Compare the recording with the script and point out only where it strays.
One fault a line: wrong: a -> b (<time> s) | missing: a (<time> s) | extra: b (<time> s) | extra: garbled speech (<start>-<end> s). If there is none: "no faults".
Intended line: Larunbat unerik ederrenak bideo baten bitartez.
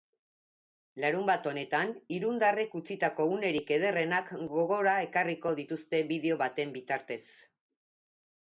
extra: honetan irundarrek utzitako (1.5 s)
extra: gogora ekarriko dituzte (4.5 s)